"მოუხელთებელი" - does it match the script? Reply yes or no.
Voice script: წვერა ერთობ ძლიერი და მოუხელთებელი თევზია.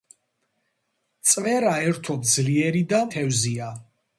no